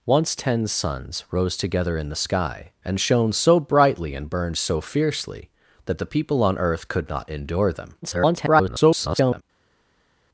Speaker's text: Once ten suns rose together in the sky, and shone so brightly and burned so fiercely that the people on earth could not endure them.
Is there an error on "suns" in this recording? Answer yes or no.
no